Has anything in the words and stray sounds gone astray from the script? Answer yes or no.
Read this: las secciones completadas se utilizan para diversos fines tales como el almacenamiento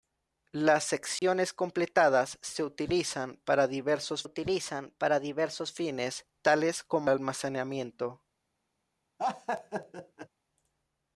yes